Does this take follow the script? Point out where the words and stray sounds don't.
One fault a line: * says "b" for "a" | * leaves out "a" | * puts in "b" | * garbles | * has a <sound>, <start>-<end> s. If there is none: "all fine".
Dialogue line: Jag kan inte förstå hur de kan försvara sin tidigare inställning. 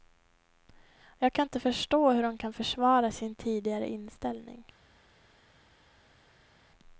all fine